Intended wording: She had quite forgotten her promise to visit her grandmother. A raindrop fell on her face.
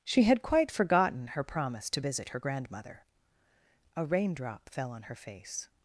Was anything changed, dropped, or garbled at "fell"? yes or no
no